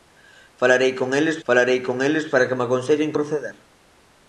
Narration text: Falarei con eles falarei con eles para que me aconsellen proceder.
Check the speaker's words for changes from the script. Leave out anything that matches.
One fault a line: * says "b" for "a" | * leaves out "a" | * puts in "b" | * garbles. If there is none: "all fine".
all fine